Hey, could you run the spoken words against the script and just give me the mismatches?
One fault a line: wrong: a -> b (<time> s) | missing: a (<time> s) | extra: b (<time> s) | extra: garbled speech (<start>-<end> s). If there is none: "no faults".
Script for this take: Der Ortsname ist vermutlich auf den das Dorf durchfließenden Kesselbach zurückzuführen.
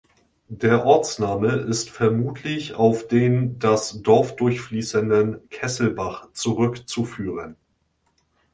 no faults